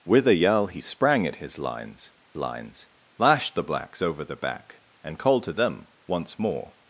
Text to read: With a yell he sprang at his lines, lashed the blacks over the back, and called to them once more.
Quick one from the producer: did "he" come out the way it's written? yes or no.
yes